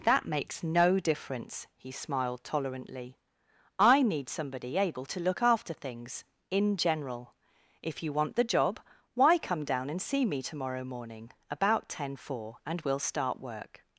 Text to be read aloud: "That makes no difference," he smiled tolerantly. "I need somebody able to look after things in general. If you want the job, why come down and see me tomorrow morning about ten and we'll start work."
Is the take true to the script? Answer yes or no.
no